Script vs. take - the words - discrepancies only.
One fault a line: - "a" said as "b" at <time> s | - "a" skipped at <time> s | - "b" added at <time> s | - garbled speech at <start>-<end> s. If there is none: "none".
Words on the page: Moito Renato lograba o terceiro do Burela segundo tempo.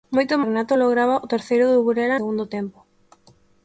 none